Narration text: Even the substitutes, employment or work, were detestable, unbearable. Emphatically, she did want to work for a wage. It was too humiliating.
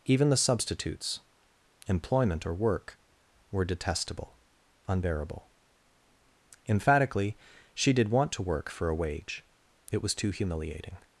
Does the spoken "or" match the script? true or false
true